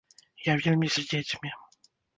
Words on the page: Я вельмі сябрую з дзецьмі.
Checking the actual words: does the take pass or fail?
fail